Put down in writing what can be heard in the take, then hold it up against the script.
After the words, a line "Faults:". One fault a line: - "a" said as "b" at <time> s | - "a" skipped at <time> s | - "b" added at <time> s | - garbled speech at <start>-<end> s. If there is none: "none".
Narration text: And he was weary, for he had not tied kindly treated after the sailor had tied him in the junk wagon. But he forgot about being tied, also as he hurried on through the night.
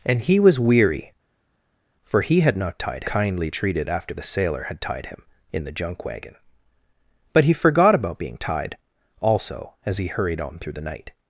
And he was weary, for he had not tied kindly treated after the sailor had tied him in the junk wagon. But he forgot about being tied, also as he hurried on through the night.
Faults:
none